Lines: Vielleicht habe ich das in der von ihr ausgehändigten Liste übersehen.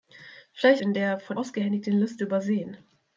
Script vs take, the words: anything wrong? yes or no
yes